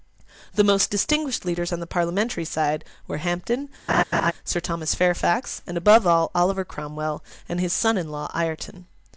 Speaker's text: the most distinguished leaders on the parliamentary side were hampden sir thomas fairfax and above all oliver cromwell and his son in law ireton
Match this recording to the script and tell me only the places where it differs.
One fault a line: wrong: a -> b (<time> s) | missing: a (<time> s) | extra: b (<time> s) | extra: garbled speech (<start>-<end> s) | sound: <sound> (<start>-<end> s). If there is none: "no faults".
sound: laugh (3.9-4.3 s)